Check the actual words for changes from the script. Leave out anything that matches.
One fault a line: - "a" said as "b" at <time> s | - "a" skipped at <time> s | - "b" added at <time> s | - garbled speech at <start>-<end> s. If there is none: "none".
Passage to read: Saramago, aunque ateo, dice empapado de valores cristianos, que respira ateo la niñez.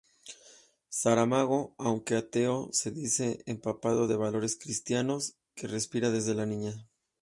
- "se" added at 2.7 s
- "ateo" said as "desde" at 6.1 s